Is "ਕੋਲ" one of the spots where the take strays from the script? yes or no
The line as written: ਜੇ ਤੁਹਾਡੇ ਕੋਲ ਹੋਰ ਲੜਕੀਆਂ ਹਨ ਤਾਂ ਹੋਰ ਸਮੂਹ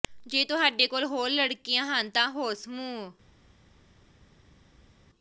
no